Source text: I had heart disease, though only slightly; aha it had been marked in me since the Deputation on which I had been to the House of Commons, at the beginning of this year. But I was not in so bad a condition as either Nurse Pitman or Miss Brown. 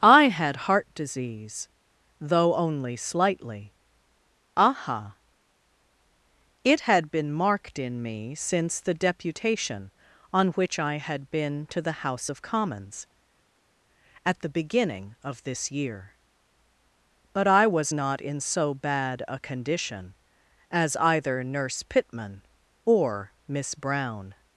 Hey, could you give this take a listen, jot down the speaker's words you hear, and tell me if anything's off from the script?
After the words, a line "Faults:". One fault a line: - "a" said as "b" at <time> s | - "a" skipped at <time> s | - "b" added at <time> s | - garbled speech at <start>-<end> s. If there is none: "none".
I had heart disease, though only slightly; aha it had been marked in me since the Deputation on which I had been to the House of Commons, at the beginning of this year. But I was not in so bad a condition as either Nurse Pitman or Miss Brown.
Faults:
none